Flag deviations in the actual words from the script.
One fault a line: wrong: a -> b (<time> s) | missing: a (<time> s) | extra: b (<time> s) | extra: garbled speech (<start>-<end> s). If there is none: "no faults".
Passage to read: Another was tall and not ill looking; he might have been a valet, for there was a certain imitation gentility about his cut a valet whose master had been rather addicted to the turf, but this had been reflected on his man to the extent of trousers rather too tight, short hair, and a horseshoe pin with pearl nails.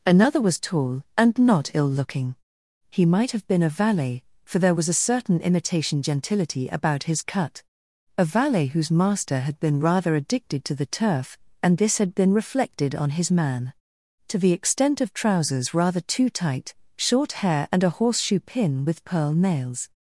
wrong: but -> and (11.6 s)